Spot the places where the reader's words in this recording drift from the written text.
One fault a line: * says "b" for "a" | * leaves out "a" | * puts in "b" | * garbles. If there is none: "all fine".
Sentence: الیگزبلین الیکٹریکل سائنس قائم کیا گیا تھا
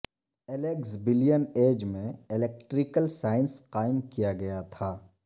* puts in "ایج میں"